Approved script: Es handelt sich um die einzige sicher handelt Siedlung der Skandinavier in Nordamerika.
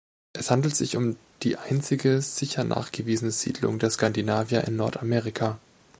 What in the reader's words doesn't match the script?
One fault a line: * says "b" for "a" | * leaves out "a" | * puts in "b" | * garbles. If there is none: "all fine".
* says "nachgewiesene" for "handelt"